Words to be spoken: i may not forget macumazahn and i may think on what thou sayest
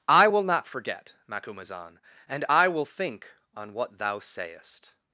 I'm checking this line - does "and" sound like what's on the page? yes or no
yes